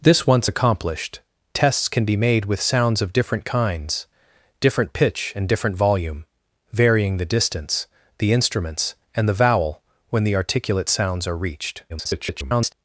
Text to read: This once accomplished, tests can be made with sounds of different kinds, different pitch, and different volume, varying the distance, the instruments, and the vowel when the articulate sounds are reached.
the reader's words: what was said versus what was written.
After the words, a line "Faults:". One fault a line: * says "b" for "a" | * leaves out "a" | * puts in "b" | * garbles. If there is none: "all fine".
This once accomplished, tests can be made with sounds of different kinds, different pitch, and different volume, varying the distance, the instruments, and the vowel when the articulate sounds are reached. [garbled]
Faults:
* garbles